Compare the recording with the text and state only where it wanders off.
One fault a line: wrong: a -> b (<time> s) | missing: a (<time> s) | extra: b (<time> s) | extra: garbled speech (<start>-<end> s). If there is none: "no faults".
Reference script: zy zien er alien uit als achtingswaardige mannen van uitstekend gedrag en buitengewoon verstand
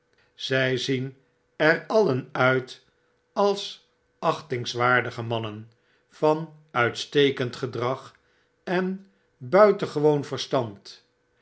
no faults